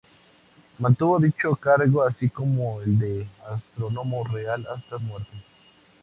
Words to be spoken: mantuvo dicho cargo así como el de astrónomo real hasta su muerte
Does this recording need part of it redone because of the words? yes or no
no